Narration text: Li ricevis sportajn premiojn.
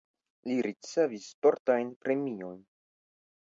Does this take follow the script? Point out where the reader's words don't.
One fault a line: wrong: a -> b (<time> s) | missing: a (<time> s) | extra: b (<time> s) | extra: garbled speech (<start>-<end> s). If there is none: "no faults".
no faults